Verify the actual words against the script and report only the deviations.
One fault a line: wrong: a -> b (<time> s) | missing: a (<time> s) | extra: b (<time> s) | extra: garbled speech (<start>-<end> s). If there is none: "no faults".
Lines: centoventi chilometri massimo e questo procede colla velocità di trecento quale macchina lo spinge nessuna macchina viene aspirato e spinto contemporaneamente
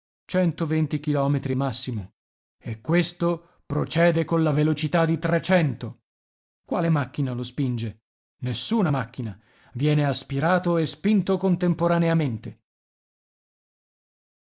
no faults